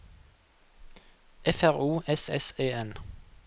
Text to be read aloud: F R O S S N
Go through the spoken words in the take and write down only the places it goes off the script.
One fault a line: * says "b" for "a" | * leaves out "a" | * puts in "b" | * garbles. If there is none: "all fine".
* puts in "E"